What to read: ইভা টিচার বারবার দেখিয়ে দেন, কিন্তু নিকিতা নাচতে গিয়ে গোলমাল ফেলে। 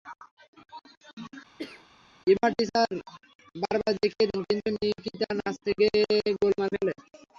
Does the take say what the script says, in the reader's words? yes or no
yes